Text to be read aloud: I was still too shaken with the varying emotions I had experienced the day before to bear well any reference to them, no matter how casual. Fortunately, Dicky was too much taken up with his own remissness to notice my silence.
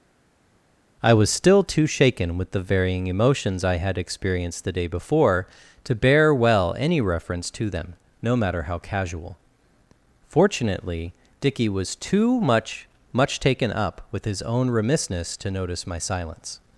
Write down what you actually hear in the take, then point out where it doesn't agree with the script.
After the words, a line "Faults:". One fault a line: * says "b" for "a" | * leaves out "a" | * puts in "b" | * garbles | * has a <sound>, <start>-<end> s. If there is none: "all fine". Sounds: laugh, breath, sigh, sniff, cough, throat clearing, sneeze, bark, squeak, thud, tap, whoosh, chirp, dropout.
I was still too shaken with the varying emotions I had experienced the day before to bear well any reference to them, no matter how casual. Fortunately, Dicky was too much much taken up with his own remissness to notice my silence.
Faults:
* puts in "much"